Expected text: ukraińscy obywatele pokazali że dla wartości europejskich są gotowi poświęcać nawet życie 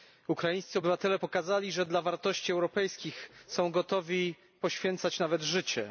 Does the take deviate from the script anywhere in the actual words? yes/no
no